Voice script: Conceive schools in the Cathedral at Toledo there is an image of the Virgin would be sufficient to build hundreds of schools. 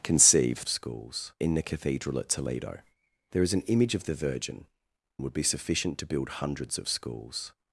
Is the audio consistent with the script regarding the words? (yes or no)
yes